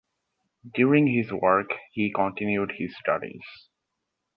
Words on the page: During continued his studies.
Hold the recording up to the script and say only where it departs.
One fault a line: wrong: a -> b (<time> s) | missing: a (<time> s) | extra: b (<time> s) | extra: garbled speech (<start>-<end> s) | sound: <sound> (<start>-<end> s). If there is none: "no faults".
extra: his work he (1.1 s)